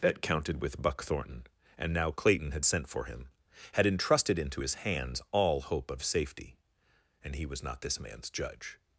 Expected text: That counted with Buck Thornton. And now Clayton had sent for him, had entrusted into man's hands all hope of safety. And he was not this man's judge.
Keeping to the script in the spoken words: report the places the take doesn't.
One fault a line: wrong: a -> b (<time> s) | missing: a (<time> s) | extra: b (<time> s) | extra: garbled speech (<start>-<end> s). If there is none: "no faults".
wrong: man's -> his (4.6 s)